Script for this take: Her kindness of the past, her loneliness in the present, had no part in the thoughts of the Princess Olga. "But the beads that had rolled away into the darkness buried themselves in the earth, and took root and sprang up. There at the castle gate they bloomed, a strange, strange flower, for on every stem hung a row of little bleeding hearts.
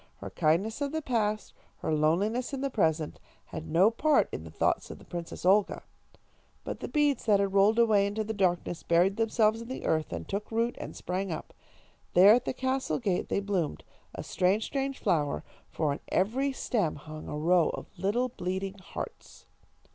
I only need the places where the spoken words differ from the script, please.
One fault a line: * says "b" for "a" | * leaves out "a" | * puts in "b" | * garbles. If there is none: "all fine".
all fine